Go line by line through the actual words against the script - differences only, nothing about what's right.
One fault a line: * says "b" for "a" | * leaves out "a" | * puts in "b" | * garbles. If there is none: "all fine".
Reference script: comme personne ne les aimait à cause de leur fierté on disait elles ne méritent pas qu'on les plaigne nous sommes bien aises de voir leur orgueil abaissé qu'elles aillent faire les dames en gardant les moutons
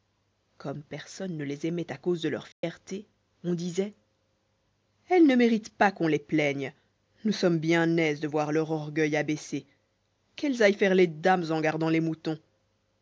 all fine